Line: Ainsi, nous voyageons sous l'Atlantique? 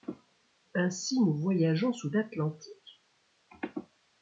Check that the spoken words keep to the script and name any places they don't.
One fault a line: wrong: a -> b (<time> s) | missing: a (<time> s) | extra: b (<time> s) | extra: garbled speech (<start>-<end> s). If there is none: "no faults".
no faults